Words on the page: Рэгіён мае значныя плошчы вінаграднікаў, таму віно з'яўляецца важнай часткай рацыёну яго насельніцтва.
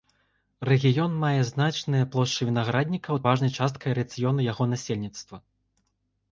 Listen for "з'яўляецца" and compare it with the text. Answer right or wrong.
wrong